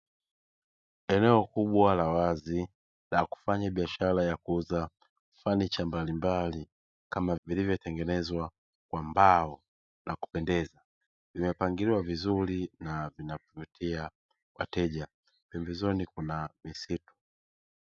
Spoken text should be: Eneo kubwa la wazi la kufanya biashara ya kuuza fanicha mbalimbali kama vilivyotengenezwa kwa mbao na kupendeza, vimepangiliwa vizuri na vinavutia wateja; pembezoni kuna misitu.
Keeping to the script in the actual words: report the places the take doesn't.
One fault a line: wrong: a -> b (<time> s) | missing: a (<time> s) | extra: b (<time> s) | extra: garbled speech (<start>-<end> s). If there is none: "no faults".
no faults